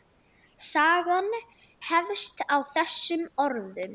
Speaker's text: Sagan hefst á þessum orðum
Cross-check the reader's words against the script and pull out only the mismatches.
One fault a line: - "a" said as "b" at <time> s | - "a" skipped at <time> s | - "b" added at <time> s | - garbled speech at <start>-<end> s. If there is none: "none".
none